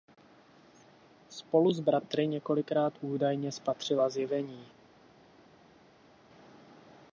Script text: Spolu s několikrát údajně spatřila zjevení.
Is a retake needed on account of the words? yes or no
yes